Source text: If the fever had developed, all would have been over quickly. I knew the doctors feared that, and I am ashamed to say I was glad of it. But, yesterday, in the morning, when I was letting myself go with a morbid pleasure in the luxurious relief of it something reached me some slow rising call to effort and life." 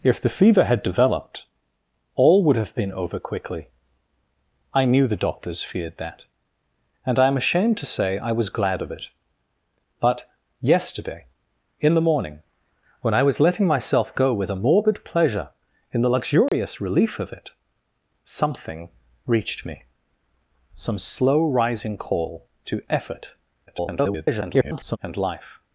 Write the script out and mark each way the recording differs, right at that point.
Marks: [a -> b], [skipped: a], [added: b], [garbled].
If the fever had developed, all would have been over quickly. I knew the doctors feared that, and I am ashamed to say I was glad of it. But, yesterday, in the morning, when I was letting myself go with a morbid pleasure in the luxurious relief of it something reached me some slow rising call to effort [garbled] and life."